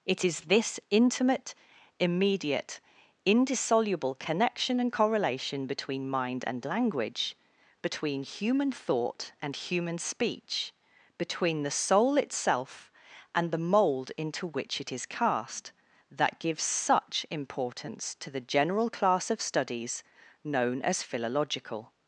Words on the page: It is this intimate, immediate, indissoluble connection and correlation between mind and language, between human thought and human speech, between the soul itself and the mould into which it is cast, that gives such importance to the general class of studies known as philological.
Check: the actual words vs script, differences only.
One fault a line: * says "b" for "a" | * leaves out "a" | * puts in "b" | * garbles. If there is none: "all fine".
all fine